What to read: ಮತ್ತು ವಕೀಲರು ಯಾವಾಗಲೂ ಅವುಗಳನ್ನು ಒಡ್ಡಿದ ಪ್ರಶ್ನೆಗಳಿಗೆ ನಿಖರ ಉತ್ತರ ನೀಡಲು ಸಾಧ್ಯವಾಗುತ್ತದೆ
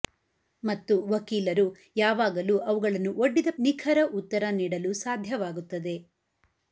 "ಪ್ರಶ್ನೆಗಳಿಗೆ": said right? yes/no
no